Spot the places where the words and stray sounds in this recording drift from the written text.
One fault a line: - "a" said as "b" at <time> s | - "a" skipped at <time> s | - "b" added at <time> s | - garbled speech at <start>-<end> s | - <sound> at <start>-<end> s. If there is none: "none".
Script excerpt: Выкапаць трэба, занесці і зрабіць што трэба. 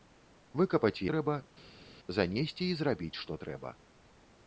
none